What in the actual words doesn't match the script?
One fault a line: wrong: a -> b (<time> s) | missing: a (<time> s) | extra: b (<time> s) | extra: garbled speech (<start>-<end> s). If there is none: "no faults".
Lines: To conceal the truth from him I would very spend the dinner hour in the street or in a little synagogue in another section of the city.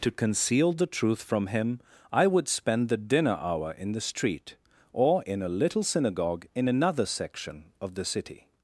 missing: very (2.5 s)